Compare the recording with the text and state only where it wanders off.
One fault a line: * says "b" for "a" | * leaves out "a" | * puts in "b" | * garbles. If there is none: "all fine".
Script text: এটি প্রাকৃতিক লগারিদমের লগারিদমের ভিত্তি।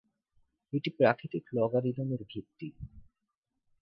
* leaves out "লগারিদমের"